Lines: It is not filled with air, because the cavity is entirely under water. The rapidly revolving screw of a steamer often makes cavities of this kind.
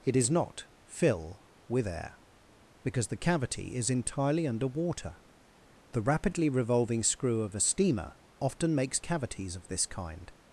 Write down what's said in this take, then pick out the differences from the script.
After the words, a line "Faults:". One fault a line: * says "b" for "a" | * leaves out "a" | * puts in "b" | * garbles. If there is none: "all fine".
It is not fill with air, because the cavity is entirely under water. The rapidly revolving screw of a steamer often makes cavities of this kind.
Faults:
* says "fill" for "filled"